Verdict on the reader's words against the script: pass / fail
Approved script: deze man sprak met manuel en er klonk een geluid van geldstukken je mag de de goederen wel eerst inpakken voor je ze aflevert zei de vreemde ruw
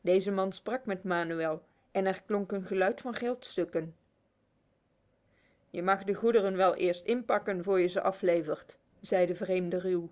fail